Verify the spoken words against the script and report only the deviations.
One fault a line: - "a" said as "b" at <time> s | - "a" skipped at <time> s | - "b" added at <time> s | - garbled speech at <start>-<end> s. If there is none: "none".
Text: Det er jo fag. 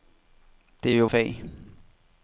none